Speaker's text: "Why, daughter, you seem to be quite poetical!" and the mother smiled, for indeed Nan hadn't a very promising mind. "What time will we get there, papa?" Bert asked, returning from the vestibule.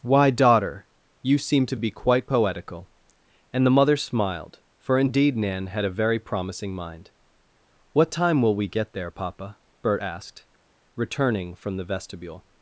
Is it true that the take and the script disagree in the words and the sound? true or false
true